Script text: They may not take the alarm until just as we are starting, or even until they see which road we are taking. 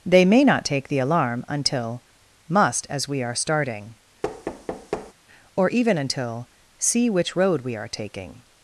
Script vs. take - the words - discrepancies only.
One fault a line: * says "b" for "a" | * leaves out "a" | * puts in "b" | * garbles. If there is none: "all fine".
* says "must" for "just"
* leaves out "they"